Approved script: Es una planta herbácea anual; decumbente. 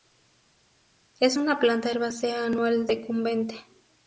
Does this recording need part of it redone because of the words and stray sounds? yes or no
no